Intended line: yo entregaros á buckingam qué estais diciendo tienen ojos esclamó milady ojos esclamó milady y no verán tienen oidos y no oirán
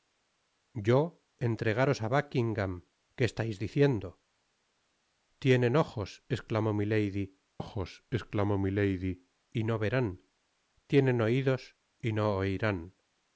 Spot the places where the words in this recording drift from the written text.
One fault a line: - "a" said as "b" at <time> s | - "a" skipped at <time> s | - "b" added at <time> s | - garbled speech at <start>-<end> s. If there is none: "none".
none